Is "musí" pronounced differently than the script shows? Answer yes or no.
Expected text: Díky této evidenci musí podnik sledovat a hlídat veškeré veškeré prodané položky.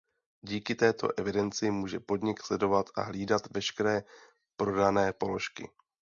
yes